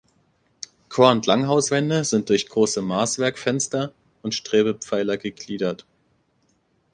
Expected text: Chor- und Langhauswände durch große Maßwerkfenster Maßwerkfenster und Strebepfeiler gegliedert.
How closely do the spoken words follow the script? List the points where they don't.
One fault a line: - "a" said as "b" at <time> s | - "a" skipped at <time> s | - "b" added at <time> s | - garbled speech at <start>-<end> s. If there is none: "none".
- "sind" added at 2.0 s
- "Maßwerkfenster" skipped at 3.9 s